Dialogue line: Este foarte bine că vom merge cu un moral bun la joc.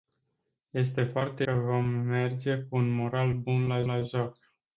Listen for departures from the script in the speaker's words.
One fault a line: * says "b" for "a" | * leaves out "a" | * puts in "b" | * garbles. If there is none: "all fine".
* leaves out "bine"
* puts in "la"